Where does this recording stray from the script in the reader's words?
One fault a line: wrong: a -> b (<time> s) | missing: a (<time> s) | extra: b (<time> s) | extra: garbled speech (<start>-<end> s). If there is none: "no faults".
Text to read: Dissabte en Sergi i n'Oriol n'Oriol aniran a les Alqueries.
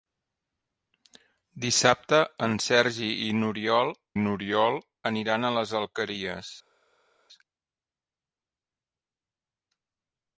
no faults